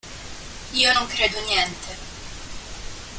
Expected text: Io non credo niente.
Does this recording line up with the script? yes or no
yes